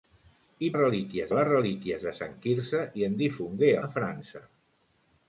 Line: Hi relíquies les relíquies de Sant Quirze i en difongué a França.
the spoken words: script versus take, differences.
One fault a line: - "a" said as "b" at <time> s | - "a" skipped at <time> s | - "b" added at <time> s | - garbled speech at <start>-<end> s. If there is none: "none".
none